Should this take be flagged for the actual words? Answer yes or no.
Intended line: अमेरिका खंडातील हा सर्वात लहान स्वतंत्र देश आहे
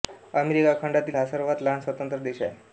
no